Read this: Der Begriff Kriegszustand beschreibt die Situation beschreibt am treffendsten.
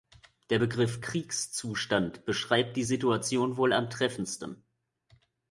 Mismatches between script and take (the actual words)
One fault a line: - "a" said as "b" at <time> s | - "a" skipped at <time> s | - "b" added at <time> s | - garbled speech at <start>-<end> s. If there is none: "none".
- "beschreibt" said as "wohl" at 3.5 s